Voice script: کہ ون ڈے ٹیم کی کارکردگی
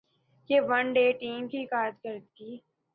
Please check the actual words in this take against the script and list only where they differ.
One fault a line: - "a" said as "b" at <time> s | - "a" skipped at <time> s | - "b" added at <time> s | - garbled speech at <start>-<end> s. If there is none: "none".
none